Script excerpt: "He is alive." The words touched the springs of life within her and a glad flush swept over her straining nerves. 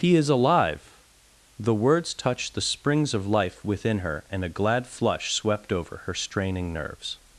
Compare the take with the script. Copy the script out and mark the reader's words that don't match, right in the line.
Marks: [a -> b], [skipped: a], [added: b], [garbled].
"He is alive." The words touched the springs of life within her and a glad flush swept over her straining nerves.